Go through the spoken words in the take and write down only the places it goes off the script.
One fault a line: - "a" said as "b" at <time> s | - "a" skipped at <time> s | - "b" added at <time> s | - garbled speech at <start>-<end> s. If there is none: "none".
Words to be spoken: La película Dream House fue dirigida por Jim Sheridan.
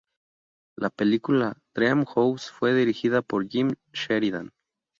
none